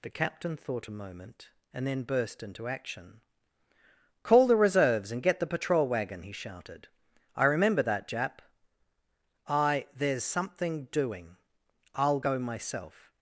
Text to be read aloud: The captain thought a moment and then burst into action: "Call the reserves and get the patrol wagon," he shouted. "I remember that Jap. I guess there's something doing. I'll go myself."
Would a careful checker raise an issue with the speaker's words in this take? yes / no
yes